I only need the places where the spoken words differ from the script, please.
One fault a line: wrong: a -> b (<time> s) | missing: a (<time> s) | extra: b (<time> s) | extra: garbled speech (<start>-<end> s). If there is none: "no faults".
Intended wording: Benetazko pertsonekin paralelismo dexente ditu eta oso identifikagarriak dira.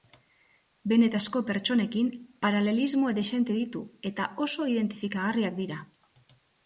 no faults